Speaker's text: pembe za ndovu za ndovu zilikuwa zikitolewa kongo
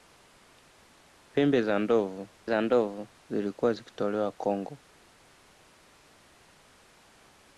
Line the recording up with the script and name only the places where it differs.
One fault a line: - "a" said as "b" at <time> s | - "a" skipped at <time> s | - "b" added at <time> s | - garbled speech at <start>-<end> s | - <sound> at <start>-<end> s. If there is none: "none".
none